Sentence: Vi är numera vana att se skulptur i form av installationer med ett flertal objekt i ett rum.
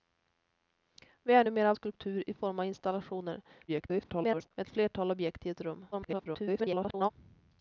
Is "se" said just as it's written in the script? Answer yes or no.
no